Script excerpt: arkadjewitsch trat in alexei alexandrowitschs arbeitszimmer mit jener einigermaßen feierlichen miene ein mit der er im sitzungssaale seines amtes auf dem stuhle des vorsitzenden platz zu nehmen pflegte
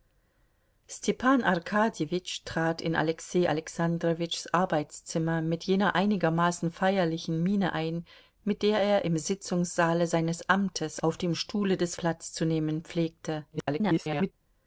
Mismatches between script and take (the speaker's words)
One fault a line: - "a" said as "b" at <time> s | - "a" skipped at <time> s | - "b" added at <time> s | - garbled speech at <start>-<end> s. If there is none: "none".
- "vorsitzenden" skipped at 12.0 s
- garbled speech at 13.5-14.3 s